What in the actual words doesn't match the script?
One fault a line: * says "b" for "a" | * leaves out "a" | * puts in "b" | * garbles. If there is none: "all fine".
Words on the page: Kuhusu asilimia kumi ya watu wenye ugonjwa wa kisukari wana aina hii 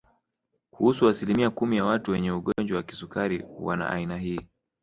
all fine